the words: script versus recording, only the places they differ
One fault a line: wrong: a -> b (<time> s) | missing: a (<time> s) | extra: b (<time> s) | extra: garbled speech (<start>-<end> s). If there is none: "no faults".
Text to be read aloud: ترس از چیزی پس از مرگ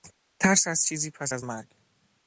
no faults